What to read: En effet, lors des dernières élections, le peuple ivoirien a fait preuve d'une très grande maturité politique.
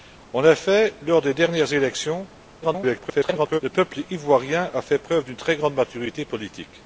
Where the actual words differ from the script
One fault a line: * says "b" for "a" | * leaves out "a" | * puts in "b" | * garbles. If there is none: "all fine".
* garbles